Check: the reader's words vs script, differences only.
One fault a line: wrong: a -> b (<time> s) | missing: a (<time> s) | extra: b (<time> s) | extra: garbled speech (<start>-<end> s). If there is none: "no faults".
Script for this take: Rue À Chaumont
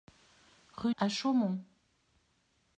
no faults